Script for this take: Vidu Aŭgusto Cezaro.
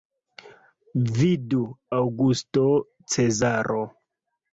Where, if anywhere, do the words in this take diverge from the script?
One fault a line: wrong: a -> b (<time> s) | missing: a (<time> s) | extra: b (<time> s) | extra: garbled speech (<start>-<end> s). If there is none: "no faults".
no faults